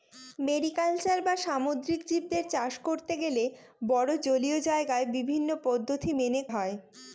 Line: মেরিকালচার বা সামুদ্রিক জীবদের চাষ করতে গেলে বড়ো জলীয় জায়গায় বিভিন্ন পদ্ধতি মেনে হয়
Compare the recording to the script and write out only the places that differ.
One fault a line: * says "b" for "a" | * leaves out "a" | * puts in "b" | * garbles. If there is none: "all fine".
all fine